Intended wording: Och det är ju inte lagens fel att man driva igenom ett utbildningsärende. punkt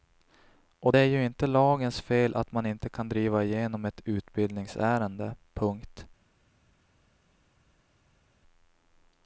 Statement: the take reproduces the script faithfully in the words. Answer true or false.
false